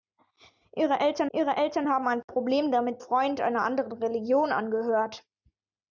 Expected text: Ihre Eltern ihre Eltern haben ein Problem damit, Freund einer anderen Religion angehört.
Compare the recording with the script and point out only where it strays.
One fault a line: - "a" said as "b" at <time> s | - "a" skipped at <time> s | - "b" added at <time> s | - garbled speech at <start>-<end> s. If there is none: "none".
none